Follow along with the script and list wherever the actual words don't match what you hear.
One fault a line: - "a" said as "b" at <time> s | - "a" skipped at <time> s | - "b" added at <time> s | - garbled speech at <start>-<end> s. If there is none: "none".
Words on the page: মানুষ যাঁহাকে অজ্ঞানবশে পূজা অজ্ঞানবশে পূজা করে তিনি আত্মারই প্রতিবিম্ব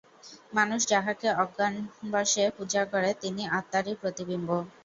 - "অজ্ঞানবশে পূজা" skipped at 2.8 s